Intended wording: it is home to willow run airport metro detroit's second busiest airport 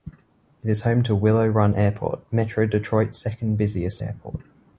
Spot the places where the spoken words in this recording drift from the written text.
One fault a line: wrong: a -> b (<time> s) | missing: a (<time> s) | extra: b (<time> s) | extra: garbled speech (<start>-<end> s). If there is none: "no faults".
no faults